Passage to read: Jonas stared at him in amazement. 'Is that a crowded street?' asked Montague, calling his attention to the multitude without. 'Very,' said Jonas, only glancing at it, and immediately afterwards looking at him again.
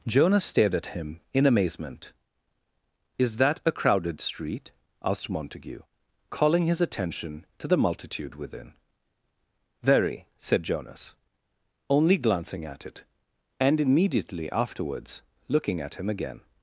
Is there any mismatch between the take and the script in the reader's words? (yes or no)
yes